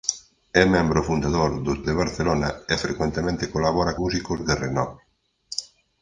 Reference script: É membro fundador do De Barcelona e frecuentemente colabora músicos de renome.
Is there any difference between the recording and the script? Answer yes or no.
no